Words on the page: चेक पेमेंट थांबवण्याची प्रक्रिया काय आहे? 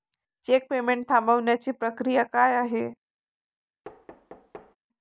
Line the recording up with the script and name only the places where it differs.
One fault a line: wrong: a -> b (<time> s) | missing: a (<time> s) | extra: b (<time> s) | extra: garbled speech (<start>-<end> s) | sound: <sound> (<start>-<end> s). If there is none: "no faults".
sound: thud (3.8-4.8 s)